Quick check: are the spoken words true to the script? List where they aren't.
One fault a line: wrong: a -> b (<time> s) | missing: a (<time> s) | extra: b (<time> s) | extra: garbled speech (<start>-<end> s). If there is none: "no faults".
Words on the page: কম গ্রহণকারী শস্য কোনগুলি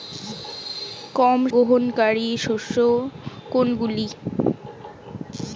no faults